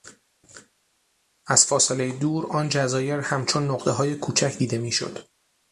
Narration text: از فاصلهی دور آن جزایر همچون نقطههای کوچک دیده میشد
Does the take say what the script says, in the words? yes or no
yes